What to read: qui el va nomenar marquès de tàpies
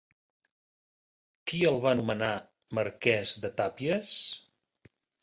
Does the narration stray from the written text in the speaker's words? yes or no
no